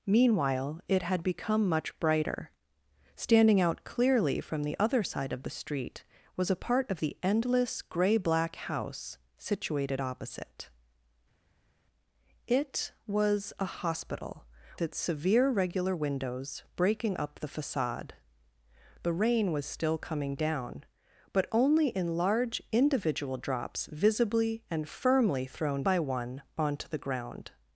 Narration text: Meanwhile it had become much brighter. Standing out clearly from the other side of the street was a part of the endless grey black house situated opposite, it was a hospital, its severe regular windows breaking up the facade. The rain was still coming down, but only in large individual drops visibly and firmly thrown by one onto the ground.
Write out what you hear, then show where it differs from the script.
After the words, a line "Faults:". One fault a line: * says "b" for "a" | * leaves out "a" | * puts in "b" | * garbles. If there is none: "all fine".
Meanwhile it had become much brighter. Standing out clearly from the other side of the street was a part of the endless grey black house situated opposite, it was a hospital, its severe regular windows breaking up the facade. The rain was still coming down, but only in large individual drops visibly and firmly thrown by one onto the ground.
Faults:
all fine